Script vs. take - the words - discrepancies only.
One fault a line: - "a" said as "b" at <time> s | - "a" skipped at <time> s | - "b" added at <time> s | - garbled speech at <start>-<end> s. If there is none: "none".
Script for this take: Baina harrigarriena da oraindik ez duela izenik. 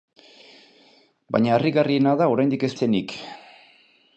- "duela" skipped at 2.7 s